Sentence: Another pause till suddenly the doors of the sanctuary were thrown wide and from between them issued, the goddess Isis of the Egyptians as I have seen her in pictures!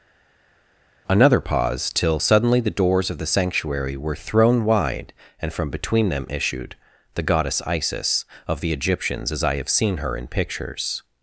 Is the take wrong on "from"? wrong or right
right